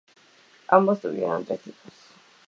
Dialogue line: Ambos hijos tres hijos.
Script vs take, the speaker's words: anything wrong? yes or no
yes